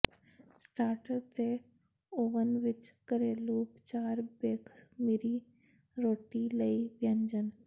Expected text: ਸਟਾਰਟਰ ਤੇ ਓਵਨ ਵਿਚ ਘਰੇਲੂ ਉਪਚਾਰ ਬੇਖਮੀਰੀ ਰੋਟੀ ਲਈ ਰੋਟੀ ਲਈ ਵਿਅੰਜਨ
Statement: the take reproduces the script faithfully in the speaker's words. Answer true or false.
false